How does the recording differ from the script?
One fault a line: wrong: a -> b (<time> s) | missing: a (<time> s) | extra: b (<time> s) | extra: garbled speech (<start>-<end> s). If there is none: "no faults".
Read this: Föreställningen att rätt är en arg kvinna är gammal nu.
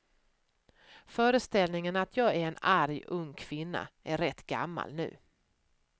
wrong: rätt -> jag (2.2 s)
extra: ung (3.1 s)
extra: rätt (4.2 s)